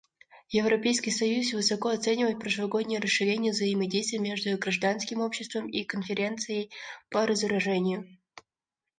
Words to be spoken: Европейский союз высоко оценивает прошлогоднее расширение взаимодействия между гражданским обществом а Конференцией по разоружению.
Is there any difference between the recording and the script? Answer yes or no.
yes